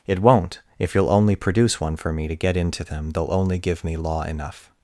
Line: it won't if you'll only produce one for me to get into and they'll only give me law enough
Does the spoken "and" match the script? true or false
false